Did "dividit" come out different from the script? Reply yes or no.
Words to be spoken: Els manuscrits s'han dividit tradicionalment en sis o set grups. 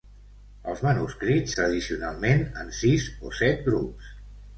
yes